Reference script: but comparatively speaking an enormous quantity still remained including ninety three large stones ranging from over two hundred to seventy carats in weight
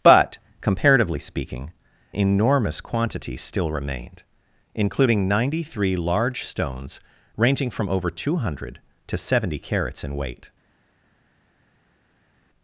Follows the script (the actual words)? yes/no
no